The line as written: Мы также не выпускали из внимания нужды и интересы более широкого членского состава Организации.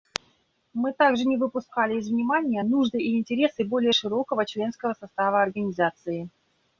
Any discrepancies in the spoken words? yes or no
no